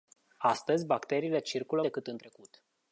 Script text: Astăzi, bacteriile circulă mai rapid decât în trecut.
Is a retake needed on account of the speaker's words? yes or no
yes